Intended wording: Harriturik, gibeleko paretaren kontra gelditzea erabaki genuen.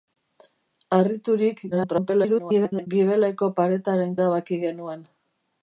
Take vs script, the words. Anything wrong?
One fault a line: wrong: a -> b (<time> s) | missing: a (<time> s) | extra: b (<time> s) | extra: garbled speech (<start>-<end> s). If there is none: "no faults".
extra: garbled speech (1.7-2.9 s)
missing: kontra gelditzea (4.1 s)